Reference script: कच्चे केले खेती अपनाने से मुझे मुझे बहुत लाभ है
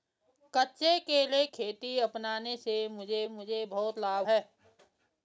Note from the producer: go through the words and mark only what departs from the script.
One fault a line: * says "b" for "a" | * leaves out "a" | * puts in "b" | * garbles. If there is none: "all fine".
all fine